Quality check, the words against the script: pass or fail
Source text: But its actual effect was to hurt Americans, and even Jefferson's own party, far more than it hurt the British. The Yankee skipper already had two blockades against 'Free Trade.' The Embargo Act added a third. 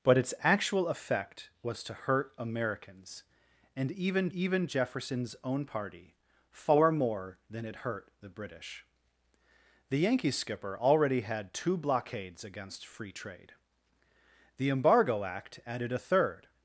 fail